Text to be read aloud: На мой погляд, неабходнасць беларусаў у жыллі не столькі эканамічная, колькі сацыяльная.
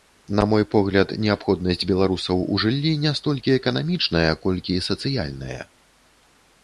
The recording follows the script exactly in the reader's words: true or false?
true